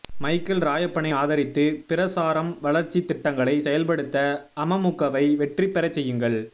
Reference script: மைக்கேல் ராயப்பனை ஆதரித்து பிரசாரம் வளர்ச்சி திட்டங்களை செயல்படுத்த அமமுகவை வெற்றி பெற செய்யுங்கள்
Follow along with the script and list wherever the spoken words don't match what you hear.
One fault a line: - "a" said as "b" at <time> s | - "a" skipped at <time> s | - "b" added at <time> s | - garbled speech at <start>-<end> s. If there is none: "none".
none